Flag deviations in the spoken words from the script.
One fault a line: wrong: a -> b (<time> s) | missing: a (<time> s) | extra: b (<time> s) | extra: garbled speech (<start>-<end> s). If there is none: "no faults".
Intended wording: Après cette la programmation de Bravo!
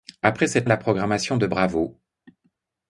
no faults